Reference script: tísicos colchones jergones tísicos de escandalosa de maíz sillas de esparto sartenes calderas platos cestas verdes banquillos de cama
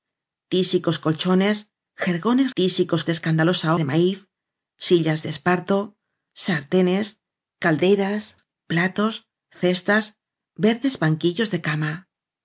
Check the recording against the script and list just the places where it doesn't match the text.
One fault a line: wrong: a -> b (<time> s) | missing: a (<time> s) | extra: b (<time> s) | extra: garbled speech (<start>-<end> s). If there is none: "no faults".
no faults